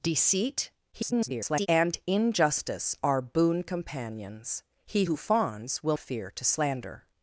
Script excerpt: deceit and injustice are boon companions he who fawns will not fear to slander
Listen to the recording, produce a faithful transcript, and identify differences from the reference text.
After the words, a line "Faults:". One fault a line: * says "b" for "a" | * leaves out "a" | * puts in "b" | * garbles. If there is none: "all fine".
deceit [garbled] and injustice are boon companions he who fawns will fear to slander
Faults:
* garbles
* leaves out "not"